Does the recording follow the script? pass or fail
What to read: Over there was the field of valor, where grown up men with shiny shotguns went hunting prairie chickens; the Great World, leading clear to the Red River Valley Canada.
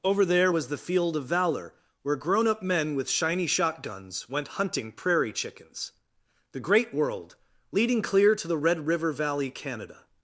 pass